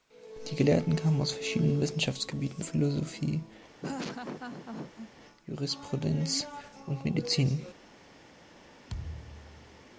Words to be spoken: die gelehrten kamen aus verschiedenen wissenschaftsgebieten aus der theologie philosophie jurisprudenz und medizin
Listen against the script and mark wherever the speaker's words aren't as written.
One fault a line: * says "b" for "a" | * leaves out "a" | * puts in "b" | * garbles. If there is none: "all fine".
* leaves out "aus der theologie"